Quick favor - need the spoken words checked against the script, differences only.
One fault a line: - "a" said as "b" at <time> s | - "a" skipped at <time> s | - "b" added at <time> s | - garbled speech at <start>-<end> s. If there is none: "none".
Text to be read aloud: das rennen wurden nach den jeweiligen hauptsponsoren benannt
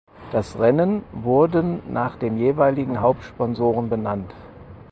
none